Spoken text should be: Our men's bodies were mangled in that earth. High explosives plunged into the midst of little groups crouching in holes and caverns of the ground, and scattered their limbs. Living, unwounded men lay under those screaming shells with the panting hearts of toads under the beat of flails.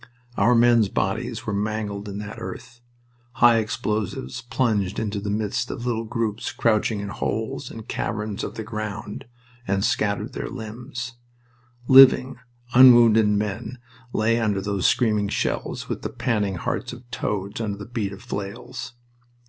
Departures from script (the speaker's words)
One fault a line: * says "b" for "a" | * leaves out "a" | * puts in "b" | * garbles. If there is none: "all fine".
all fine